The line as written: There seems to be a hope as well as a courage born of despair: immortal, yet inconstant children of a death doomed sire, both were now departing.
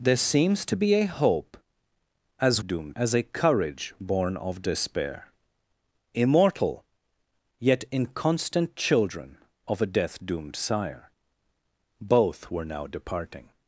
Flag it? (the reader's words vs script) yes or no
yes